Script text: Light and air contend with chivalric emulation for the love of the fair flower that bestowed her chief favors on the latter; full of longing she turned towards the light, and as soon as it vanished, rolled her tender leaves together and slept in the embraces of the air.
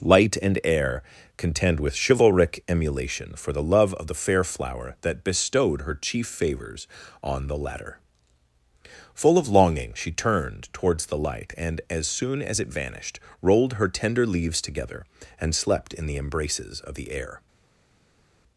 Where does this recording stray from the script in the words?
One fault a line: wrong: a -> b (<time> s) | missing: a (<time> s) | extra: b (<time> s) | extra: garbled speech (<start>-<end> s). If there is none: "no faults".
no faults